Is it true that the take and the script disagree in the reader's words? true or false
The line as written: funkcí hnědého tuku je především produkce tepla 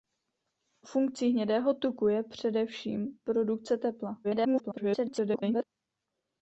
true